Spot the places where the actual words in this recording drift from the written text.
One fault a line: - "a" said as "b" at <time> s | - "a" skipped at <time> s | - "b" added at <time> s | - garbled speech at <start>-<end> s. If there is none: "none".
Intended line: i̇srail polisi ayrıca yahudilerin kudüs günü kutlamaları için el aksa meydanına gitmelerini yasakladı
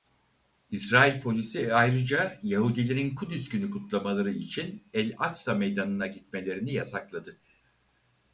none